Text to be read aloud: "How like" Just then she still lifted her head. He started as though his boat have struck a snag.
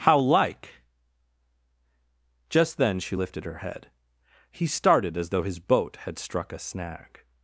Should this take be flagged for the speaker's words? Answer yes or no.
yes